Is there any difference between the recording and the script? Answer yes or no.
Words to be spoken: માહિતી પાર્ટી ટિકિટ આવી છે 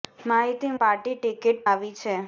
no